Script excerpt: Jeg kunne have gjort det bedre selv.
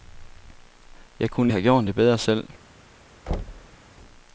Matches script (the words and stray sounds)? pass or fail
fail